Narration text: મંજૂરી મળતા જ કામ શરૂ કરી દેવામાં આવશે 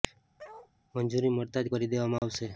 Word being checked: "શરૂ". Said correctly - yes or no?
no